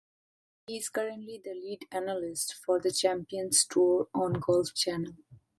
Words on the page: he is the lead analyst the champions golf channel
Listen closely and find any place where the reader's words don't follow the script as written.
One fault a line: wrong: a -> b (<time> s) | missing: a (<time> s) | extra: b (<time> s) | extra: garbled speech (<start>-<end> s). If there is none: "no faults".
extra: currently (0.9 s)
extra: for (2.5 s)
extra: tour on (3.7 s)